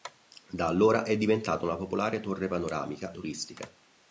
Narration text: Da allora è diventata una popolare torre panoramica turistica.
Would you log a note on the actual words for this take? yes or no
no